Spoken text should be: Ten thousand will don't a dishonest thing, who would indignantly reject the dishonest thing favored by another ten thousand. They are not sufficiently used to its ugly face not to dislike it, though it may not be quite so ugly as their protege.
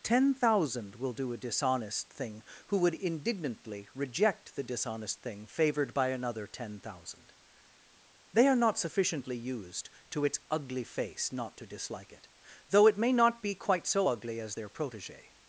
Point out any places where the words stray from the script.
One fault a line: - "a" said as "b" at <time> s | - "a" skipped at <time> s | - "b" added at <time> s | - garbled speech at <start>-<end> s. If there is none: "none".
- "don't" said as "do" at 1.1 s